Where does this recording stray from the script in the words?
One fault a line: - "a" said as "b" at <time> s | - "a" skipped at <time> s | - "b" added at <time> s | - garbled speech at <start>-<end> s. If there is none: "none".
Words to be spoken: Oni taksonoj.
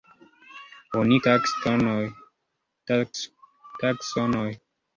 none